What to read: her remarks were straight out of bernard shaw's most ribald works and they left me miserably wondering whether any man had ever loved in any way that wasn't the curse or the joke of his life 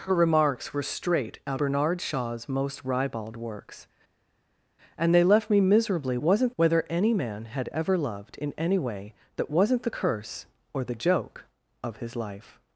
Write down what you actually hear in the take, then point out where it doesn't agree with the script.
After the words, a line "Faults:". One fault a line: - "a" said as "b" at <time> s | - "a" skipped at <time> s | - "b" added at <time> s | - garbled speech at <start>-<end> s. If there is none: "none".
her remarks were straight out bernard shaw's most ribald works and they left me miserably wasn't whether any man had ever loved in any way that wasn't the curse or the joke of his life
Faults:
- "of" skipped at 1.6 s
- "wondering" said as "wasn't" at 6.2 s